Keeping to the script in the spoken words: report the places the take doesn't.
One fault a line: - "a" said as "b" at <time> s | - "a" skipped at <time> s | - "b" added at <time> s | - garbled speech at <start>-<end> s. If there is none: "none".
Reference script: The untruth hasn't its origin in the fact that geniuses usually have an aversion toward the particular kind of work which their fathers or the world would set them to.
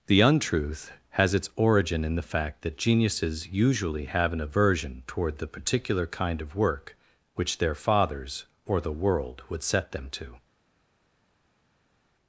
- "hasn't" said as "has" at 1.1 s